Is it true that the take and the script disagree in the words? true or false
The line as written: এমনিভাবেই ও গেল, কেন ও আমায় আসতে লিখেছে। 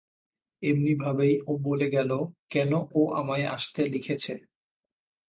true